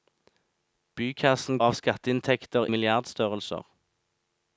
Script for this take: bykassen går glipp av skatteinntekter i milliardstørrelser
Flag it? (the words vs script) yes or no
yes